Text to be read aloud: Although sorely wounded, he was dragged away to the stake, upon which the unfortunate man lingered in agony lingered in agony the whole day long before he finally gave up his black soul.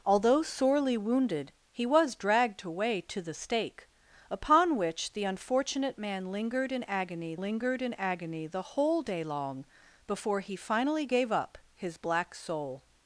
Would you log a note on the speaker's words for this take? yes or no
no